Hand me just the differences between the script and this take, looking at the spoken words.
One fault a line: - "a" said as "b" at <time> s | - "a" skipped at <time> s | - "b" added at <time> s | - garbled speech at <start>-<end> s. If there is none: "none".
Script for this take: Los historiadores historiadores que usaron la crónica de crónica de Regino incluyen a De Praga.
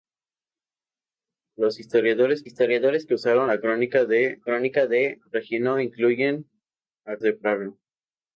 none